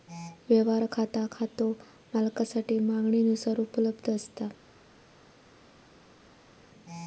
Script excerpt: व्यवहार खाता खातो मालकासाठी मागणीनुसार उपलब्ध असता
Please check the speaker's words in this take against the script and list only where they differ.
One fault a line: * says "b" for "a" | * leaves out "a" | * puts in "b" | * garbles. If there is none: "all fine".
all fine